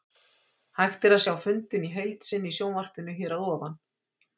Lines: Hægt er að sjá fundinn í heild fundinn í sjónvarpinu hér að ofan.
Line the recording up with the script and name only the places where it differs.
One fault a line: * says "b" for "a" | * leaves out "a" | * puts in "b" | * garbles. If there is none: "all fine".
* says "sinni" for "fundinn"